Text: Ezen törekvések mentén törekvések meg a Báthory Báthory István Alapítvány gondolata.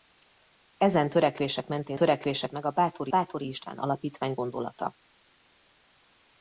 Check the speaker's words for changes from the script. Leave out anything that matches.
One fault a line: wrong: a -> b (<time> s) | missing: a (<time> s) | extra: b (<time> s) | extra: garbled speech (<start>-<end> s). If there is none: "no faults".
no faults